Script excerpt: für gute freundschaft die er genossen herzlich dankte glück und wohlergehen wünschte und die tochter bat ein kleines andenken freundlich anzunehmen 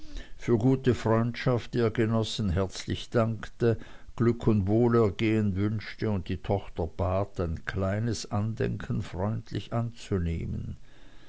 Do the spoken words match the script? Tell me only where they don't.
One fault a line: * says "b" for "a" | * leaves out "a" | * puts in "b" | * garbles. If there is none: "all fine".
all fine